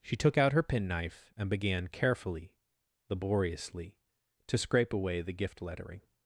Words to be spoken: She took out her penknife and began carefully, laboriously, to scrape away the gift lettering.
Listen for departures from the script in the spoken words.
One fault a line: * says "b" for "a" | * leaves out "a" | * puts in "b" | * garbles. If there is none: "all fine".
all fine